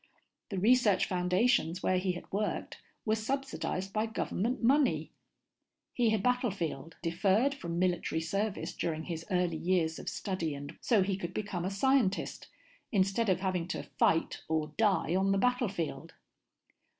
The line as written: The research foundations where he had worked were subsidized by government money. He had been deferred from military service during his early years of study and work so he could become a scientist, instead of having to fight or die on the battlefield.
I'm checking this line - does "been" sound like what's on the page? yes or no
no